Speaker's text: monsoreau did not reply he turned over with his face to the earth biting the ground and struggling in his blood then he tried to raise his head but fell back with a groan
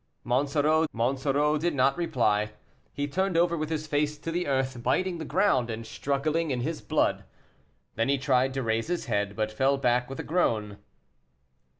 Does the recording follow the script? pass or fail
fail